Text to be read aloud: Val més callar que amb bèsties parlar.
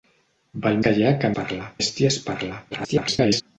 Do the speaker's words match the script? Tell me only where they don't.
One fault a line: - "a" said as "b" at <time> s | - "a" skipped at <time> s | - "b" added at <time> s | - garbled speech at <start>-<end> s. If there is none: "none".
- "més" skipped at 0.8 s
- "amb" said as "parlar" at 1.4 s
- garbled speech at 2.7-3.4 s